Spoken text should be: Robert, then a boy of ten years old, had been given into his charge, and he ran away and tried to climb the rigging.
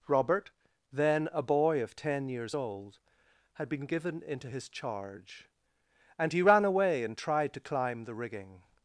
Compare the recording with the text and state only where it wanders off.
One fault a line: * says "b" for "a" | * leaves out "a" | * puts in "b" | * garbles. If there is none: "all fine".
all fine